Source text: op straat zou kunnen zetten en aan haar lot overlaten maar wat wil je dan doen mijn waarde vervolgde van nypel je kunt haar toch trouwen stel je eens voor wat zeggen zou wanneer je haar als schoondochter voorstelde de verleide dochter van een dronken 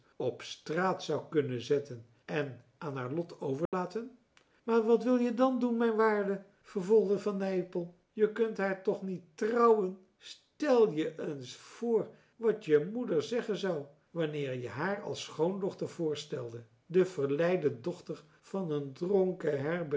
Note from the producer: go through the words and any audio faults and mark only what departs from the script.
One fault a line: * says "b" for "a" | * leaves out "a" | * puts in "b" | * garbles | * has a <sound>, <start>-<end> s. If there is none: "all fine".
* has a dropout, 3.7-3.7 s
* puts in "niet"
* puts in "je moeder"